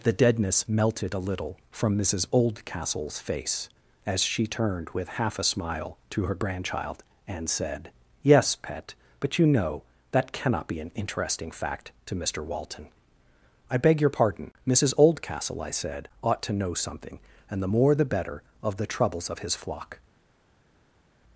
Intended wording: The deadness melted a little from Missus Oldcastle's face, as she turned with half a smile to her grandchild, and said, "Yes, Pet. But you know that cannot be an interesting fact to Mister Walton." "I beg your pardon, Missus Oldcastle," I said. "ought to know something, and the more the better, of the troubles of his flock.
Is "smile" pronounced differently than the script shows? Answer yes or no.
no